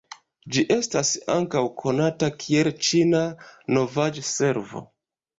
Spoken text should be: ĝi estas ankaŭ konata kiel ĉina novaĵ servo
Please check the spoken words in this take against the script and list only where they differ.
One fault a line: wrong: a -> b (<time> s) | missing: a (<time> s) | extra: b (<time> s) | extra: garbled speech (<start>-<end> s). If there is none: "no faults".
no faults